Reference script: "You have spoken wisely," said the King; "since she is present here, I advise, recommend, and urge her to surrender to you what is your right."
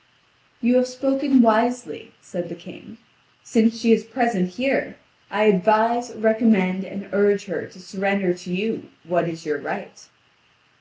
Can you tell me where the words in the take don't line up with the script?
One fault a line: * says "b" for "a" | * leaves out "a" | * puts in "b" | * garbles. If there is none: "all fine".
all fine